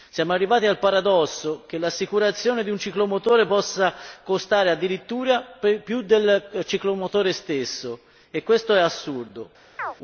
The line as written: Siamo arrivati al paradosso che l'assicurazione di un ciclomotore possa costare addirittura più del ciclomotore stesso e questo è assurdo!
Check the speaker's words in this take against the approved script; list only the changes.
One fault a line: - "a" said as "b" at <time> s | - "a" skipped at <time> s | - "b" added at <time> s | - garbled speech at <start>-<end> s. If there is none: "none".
none